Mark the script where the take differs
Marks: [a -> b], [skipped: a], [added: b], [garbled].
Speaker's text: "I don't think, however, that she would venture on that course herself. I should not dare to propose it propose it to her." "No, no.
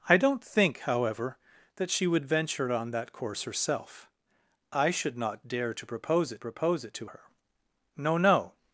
"I don't think, however, that she would venture on that course herself. I should not dare to propose it propose it to her." "No, no.